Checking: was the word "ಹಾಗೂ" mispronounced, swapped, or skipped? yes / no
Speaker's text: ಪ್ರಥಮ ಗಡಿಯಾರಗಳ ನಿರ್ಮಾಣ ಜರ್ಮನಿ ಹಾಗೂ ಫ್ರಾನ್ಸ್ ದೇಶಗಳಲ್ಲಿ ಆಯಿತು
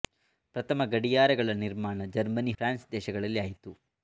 yes